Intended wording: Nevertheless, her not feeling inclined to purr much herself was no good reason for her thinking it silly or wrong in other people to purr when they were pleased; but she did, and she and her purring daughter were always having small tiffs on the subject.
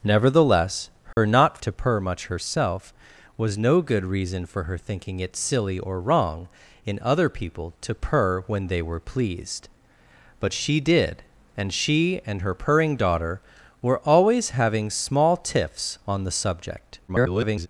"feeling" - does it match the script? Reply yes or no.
no